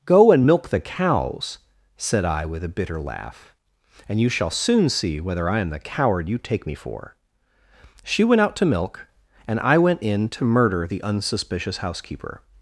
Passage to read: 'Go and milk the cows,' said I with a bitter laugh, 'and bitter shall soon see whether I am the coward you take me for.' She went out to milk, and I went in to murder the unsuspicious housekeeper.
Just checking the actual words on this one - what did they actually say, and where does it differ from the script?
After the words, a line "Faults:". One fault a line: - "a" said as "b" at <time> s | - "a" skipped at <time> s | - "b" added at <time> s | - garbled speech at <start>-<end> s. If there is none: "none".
'Go and milk the cows,' said I with a bitter laugh, 'and you shall soon see whether I am the coward you take me for.' She went out to milk, and I went in to murder the unsuspicious housekeeper.
Faults:
- "bitter" said as "you" at 4.2 s